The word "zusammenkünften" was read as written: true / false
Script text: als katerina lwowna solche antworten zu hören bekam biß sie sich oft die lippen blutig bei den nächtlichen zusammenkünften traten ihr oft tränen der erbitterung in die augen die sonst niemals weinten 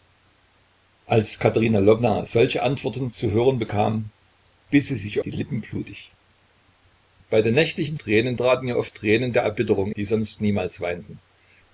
false